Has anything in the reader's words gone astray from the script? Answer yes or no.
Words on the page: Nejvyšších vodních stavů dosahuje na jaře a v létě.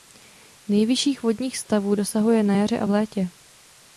no